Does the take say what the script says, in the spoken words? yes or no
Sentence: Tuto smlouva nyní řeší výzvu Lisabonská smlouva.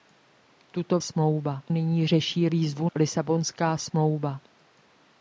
yes